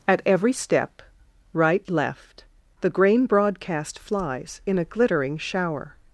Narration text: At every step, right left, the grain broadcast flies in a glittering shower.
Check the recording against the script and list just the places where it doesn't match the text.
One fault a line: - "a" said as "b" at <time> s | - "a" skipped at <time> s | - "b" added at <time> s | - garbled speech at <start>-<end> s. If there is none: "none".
none